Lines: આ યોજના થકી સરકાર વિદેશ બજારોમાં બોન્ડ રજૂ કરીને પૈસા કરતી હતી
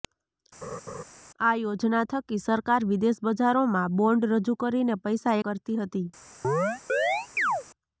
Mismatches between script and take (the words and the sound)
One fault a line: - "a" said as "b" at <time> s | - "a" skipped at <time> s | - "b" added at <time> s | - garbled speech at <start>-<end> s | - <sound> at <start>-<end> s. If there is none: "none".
- laugh at 0.6-1.0 s
- chirp at 6.4-7.6 s